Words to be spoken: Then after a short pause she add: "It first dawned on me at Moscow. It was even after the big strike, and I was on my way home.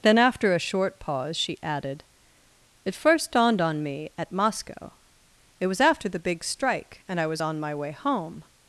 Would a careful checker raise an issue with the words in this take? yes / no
yes